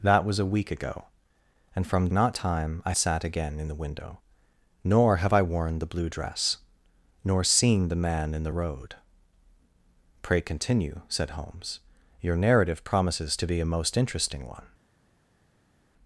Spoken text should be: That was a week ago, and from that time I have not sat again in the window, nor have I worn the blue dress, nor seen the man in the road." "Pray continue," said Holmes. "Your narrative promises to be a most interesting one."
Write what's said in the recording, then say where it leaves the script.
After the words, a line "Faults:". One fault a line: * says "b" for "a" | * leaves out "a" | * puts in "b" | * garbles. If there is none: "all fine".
That was a week ago, and from not time I sat again in the window, nor have I worn the blue dress, nor seen the man in the road." "Pray continue," said Holmes. "Your narrative promises to be a most interesting one."
Faults:
* says "not" for "that"
* leaves out "have not"